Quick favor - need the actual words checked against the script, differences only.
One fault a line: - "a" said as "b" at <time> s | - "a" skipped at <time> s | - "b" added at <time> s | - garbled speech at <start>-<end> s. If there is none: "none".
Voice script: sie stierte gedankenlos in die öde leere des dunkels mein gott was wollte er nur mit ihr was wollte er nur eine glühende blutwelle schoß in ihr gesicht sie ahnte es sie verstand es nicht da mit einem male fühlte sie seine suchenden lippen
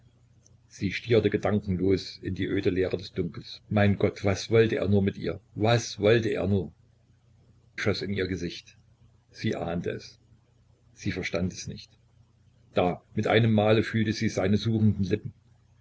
- "eine glühende blutwelle" skipped at 6.7 s